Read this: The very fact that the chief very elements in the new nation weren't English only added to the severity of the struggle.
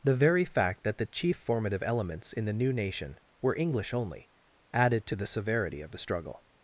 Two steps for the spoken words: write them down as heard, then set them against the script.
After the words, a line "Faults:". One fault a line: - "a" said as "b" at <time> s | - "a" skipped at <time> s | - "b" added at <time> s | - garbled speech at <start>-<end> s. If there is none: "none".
The very fact that the chief formative elements in the new nation were English only added to the severity of the struggle.
Faults:
- "very" said as "formative" at 1.4 s
- "weren't" said as "were" at 3.4 s